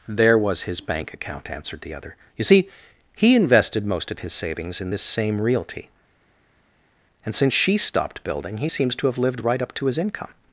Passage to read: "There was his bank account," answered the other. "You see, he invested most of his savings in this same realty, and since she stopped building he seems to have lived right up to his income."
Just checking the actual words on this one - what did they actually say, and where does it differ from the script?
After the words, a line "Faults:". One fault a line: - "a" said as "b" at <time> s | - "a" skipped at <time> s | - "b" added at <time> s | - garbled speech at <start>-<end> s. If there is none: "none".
"There was his bank account," answered the other. "You see, he invested most of his savings in this same realty, and since she stopped building he seems to have lived right up to his income."
Faults:
none